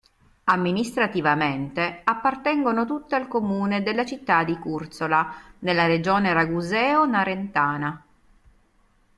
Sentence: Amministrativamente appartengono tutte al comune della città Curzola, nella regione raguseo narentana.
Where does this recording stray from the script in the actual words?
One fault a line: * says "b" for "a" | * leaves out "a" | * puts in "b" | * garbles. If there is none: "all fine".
* puts in "di"